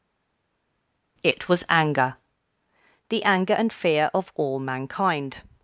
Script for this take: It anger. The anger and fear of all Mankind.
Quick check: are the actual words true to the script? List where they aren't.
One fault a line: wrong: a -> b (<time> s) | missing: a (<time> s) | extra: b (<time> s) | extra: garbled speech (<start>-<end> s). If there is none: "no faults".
extra: was (1.5 s)